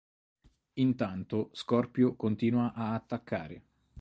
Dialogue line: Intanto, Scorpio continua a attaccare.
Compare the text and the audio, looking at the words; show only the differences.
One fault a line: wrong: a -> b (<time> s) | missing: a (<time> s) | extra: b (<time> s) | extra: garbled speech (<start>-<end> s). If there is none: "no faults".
no faults